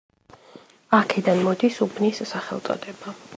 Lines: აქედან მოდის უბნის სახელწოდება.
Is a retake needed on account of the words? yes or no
no